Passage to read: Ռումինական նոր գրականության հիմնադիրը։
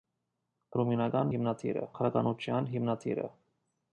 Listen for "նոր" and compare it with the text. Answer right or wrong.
wrong